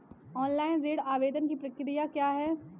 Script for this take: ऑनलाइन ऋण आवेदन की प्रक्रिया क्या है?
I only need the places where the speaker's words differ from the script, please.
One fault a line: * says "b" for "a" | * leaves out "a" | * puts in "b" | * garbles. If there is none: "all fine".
all fine